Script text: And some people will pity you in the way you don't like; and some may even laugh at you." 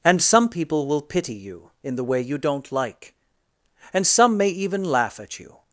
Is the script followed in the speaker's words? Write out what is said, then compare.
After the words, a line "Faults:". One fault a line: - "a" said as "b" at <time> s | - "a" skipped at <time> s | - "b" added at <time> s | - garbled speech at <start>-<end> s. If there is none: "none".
And some people will pity you in the way you don't like; and some may even laugh at you."
Faults:
none